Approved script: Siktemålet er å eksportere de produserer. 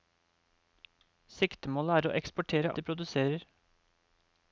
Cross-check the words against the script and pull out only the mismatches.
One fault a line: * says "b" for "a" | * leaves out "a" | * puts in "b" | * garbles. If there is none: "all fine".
all fine